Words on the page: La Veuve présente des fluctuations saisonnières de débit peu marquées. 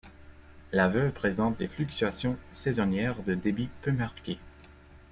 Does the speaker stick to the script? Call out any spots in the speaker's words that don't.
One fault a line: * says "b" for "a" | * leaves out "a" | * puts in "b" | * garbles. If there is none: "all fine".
all fine